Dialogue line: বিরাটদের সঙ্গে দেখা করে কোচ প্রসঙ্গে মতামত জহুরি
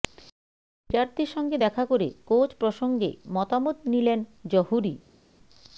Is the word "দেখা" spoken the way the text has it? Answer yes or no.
yes